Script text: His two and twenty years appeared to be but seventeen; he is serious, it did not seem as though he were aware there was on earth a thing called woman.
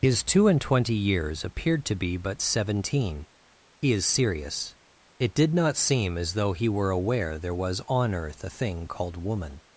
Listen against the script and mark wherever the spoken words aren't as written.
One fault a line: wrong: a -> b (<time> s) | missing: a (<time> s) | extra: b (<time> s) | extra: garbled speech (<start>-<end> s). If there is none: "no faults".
no faults